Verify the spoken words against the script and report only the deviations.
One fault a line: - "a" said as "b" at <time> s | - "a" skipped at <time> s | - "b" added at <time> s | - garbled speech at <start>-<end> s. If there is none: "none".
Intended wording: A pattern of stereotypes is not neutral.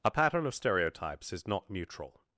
none